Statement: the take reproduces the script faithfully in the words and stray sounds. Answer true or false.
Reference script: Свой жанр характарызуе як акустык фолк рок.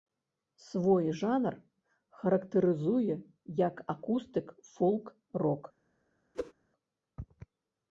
false